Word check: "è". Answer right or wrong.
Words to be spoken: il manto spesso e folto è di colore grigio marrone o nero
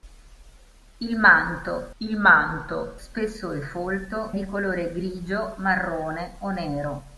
wrong